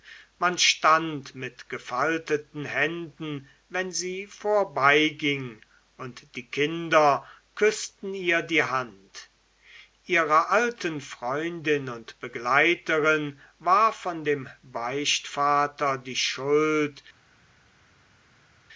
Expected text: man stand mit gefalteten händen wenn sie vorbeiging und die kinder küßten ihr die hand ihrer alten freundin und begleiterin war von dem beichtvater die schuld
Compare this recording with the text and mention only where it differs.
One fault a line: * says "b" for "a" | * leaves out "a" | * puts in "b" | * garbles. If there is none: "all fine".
all fine